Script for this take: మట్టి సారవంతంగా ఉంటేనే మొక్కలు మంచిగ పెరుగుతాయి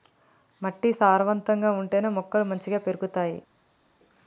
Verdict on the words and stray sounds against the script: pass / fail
pass